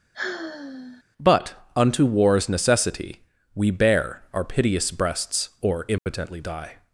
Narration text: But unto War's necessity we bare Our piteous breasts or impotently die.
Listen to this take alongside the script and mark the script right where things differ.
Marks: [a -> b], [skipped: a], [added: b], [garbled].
But unto War's necessity we bare Our piteous breasts or impotently die.